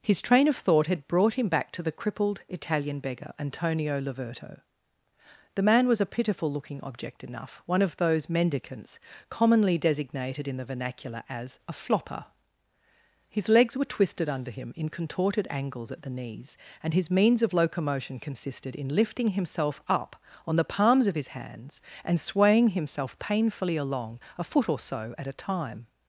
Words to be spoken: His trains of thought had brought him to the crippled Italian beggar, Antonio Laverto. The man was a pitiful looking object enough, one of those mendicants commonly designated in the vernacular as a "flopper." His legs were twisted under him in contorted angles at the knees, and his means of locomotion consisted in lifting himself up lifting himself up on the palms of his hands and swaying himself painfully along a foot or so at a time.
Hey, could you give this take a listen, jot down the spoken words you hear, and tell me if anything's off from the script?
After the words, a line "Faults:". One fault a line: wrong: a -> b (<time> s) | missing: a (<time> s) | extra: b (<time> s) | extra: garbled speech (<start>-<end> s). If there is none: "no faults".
His train of thought had brought him back to the crippled Italian beggar, Antonio Laverto. The man was a pitiful looking object enough, one of those mendicants commonly designated in the vernacular as a "flopper." His legs were twisted under him in contorted angles at the knees, and his means of locomotion consisted in lifting himself up on the palms of his hands and swaying himself painfully along a foot or so at a time.
Faults:
wrong: trains -> train (0.2 s)
extra: back (1.5 s)
missing: lifting himself up (20.2 s)